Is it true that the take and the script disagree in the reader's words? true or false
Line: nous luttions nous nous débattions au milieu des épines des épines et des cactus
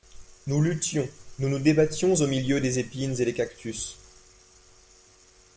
true